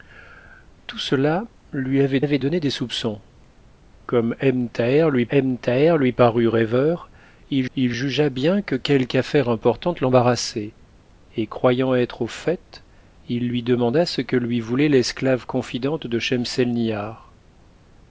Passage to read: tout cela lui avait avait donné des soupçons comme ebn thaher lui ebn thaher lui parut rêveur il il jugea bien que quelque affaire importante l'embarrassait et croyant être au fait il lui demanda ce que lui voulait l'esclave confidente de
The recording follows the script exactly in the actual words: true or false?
true